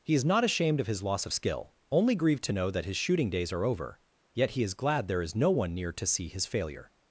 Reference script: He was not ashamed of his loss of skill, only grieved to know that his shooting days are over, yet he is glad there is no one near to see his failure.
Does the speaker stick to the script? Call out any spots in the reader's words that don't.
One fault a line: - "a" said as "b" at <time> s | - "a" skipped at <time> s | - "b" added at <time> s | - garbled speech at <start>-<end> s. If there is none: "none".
- "was" said as "is" at 0.1 s